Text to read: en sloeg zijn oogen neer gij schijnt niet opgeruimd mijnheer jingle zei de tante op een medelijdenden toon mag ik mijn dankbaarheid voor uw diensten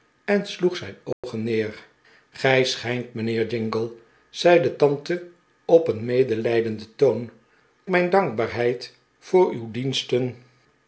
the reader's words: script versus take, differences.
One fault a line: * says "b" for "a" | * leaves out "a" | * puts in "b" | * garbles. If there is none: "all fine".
* leaves out "niet opgeruimd"
* leaves out "mag ik"